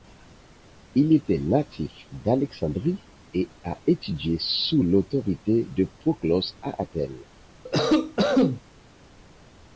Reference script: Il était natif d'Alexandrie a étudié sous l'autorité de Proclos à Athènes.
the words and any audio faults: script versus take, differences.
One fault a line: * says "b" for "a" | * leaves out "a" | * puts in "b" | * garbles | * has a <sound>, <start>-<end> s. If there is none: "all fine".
* puts in "et"
* has a cough, 7.6-8.6 s